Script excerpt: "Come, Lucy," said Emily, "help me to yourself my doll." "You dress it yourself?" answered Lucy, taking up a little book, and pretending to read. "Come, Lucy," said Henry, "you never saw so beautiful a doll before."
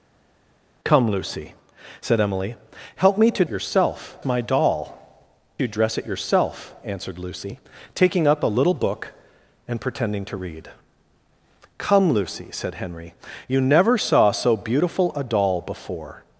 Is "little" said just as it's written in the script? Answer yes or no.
yes